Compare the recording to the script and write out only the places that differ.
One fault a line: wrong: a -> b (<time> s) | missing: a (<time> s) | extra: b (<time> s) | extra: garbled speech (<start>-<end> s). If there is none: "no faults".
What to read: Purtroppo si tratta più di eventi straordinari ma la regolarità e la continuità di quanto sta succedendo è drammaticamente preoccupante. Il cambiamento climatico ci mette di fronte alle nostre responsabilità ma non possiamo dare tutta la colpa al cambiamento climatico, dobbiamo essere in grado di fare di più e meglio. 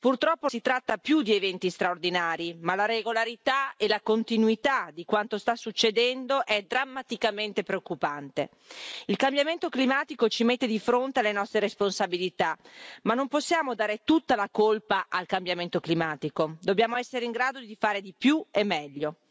no faults